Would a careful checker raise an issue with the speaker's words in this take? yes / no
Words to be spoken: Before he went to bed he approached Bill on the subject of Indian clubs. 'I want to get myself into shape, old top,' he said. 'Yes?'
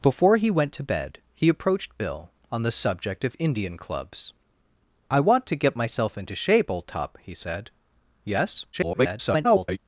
yes